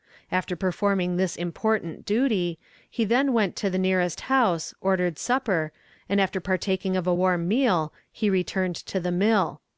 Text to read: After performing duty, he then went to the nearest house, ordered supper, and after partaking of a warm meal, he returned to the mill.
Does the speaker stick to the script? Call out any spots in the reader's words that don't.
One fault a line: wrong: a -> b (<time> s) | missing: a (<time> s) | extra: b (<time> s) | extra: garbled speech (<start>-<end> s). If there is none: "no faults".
extra: this important (1.2 s)